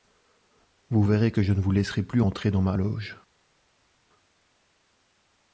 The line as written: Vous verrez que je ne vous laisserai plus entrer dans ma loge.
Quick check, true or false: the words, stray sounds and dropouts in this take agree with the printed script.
true